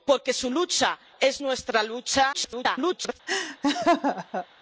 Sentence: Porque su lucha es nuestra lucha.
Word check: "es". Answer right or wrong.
right